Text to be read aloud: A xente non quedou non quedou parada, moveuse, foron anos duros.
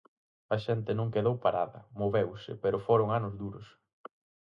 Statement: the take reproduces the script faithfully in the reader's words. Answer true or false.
false